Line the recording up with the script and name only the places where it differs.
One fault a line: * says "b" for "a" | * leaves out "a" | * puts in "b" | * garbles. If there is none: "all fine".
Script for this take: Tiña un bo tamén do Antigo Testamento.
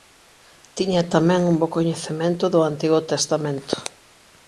* puts in "tamén"
* says "coñecemento" for "tamén"